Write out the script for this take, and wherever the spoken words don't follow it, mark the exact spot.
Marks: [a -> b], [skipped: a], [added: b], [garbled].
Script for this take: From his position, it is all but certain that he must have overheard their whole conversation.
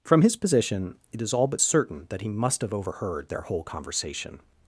From his position, it is all but certain that he must have overheard their whole conversation.